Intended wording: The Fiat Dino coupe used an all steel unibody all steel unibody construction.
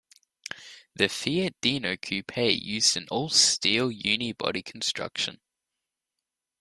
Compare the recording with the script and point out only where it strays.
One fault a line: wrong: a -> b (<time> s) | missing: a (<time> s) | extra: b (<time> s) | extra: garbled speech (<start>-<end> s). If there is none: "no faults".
missing: all steel unibody (4.6 s)